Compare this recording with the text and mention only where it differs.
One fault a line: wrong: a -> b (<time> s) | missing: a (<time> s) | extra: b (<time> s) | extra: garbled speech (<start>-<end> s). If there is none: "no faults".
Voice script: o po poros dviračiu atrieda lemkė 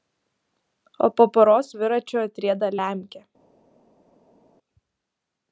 no faults